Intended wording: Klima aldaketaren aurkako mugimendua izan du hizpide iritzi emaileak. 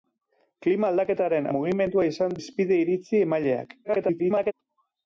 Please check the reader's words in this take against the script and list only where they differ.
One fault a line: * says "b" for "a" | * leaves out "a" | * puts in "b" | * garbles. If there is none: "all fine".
* leaves out "aurkako"
* leaves out "du"
* garbles